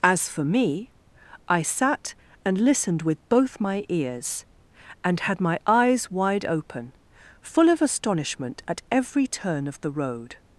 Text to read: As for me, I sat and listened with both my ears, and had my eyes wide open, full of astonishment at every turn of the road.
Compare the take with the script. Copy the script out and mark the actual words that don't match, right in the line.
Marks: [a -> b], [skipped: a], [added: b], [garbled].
As for me, I sat and listened with both my ears, and had my eyes wide open, full of astonishment at every turn of the road.